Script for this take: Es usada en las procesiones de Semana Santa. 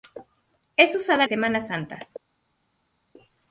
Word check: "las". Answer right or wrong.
wrong